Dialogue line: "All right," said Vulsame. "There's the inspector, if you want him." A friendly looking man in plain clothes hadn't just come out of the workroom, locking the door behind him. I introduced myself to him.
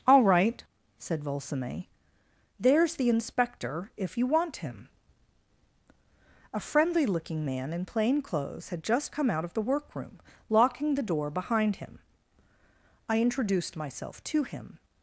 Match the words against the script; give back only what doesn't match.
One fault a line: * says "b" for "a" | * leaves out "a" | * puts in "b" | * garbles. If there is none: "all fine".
* says "had" for "hadn't"